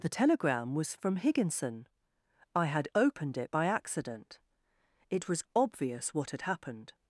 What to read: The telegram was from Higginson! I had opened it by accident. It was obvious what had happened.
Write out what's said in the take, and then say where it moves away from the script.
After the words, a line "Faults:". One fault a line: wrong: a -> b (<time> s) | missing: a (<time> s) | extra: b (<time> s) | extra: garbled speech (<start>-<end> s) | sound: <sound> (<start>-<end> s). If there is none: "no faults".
The telegram was from Higginson! I had opened it by accident. It was obvious what had happened.
Faults:
no faults